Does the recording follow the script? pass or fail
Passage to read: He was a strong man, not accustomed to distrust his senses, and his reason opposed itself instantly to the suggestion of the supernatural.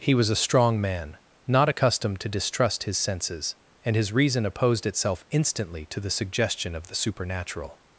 pass